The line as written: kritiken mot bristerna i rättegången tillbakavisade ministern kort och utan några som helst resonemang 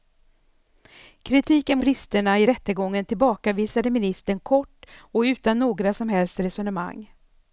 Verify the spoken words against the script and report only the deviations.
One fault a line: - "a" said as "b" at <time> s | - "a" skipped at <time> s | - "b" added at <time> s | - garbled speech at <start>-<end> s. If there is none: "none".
- "mot" skipped at 1.8 s